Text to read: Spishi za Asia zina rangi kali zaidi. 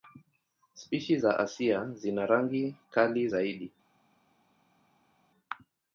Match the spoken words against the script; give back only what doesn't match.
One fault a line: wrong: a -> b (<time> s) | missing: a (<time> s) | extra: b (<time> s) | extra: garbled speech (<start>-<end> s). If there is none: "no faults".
no faults